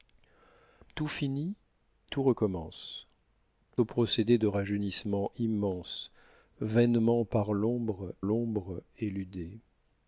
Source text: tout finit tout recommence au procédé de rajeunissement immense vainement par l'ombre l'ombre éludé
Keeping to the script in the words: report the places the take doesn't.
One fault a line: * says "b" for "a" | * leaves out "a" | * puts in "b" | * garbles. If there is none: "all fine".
all fine